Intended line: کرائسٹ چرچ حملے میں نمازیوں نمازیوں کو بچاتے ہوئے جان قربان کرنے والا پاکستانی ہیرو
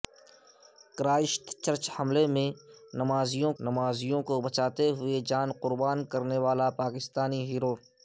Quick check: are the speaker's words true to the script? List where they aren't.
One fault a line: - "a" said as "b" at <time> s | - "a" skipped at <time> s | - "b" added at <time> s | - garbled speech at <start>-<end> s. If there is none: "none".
none